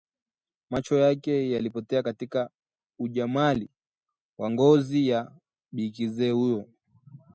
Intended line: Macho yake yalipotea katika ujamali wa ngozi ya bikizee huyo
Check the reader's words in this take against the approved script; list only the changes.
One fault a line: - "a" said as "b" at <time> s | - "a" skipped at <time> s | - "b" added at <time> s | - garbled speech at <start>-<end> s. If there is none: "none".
none